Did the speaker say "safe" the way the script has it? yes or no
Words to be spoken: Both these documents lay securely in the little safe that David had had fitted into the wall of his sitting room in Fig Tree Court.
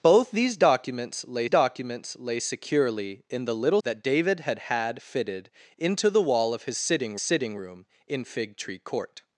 no